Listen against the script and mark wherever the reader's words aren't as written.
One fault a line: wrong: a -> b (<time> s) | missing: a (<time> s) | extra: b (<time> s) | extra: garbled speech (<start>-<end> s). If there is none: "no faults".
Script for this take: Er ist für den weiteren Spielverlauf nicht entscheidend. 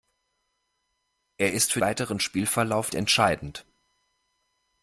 missing: den (1.8 s)
missing: nicht (2.9 s)